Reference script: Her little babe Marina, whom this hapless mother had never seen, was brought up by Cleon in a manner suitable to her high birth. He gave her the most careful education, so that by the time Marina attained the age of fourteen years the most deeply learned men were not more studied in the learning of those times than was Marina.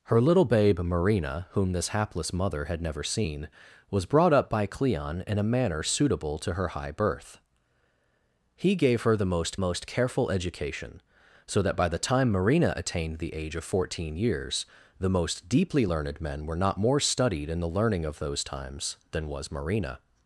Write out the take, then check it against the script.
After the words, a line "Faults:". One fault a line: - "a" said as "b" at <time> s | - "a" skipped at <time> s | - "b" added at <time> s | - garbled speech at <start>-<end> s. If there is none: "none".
Her little babe Marina, whom this hapless mother had never seen, was brought up by Cleon in a manner suitable to her high birth. He gave her the most most careful education, so that by the time Marina attained the age of fourteen years the most deeply learned men were not more studied in the learning of those times than was Marina.
Faults:
- "most" added at 9.6 s